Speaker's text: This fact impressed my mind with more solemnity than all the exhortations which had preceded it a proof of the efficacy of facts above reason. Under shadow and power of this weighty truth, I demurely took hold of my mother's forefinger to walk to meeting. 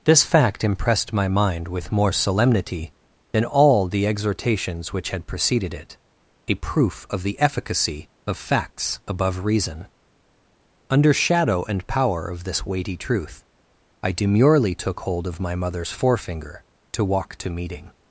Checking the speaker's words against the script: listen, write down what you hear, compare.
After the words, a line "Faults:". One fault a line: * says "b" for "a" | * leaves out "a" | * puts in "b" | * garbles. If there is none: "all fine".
This fact impressed my mind with more solemnity than all the exhortations which had preceded it a proof of the efficacy of facts above reason. Under shadow and power of this weighty truth, I demurely took hold of my mother's forefinger to walk to meeting.
Faults:
all fine